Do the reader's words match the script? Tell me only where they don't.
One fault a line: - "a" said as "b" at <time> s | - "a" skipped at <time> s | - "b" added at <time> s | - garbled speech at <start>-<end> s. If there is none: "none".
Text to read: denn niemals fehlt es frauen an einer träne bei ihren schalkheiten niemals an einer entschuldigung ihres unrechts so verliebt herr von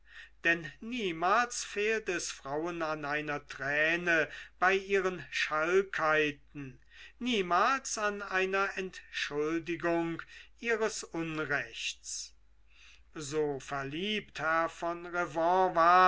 none